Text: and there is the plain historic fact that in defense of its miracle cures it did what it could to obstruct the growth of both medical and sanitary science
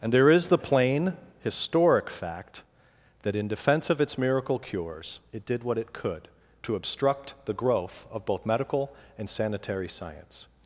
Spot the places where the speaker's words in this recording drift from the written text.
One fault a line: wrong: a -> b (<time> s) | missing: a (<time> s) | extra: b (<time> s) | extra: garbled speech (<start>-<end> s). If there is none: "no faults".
no faults